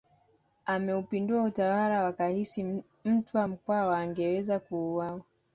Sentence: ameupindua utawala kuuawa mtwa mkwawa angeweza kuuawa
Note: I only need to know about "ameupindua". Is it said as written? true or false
true